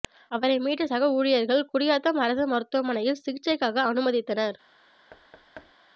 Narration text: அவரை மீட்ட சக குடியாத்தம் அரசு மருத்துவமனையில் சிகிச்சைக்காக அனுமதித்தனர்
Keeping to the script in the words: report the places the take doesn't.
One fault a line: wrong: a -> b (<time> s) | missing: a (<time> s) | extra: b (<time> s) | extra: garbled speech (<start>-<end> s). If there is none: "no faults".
extra: ஊழியர்கள் (1.2 s)